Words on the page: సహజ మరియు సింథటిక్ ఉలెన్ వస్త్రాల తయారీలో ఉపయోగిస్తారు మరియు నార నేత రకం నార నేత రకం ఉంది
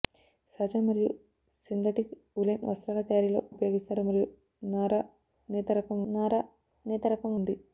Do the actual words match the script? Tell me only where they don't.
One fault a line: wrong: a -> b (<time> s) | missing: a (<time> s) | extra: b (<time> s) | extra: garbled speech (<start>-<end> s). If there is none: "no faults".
no faults